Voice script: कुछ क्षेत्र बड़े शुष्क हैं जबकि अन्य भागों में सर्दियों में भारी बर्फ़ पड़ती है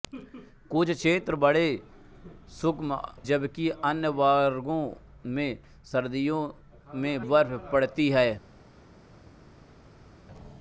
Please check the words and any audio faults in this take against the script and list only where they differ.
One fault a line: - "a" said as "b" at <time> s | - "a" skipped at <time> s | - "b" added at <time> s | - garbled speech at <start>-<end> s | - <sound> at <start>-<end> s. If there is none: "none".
- "हैं" skipped at 2.8 s
- "भारी" skipped at 7.3 s